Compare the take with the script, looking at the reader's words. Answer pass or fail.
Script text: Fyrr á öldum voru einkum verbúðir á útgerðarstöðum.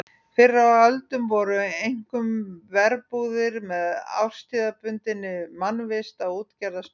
fail